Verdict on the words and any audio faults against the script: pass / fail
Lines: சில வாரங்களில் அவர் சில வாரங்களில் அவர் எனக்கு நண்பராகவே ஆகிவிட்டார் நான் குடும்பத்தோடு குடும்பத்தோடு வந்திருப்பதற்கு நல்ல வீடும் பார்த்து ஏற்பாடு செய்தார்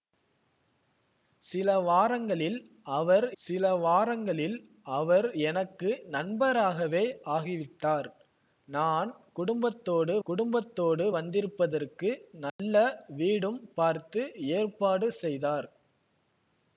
fail